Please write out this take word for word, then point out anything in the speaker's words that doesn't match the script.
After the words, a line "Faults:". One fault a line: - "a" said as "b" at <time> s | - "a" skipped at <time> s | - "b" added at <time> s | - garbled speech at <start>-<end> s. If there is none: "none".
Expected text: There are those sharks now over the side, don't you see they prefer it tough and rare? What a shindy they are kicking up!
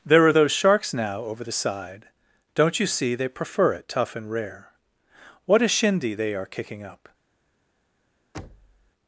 There are those sharks now over the side, don't you see they prefer it tough and rare? What a shindy they are kicking up!
Faults:
none